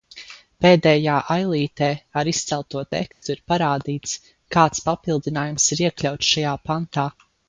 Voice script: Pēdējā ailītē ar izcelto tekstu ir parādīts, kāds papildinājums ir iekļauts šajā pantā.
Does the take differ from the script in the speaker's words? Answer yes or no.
no